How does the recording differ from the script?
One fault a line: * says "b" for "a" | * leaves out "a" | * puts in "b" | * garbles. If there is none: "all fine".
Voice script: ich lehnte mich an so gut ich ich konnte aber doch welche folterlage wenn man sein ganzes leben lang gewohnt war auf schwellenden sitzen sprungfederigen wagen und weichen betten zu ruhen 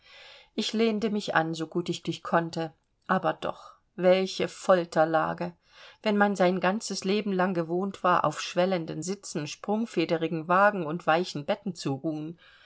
all fine